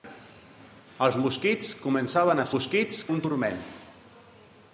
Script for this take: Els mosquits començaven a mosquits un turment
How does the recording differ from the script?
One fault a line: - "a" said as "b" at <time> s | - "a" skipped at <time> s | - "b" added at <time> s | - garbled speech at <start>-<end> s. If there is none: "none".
none